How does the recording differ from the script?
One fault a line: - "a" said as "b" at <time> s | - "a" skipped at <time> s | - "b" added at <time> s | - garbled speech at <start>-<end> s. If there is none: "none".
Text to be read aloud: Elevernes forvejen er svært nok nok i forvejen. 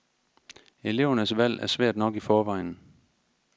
- "forvejen" said as "valg" at 1.4 s
- "nok" skipped at 2.1 s